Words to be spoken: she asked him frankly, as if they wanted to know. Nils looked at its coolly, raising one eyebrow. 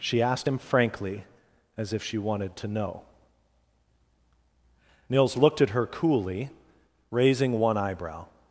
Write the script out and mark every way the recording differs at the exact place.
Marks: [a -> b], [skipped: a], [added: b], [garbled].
she asked him frankly, as if [they -> she] wanted to know. Nils looked at [its -> her] coolly, raising one eyebrow.